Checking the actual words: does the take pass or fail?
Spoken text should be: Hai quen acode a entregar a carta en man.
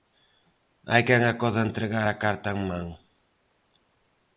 pass